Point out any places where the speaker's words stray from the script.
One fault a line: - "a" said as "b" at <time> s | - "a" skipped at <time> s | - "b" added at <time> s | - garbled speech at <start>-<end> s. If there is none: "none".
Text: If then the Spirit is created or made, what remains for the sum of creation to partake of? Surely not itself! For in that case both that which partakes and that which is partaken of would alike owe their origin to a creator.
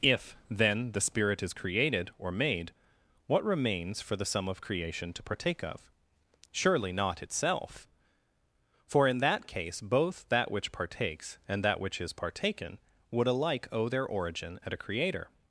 - "of" skipped at 12.8 s
- "to" said as "at" at 14.7 s